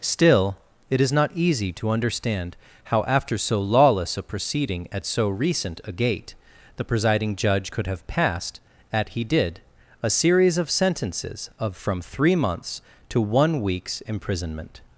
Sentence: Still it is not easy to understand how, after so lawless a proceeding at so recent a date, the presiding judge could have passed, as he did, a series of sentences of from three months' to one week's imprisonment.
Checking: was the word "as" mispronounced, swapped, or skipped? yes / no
yes